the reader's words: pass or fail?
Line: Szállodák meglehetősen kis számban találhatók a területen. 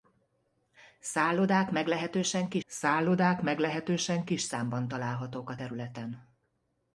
fail